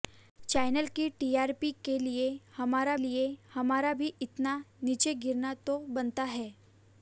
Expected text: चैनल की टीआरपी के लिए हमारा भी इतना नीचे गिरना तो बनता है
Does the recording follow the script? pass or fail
fail